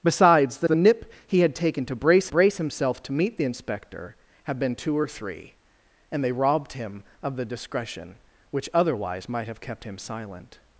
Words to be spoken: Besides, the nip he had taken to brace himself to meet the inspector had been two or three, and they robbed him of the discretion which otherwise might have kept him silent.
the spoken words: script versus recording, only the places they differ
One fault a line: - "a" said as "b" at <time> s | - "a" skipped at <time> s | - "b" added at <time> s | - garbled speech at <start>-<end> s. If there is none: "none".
- "the" added at 0.6 s
- "brace" added at 2.3 s